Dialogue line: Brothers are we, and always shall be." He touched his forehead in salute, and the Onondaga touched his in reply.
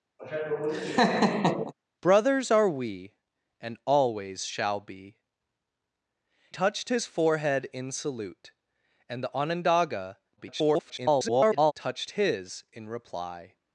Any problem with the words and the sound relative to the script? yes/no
yes